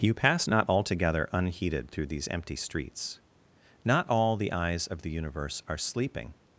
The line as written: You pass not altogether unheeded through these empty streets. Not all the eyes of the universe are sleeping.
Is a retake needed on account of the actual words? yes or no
no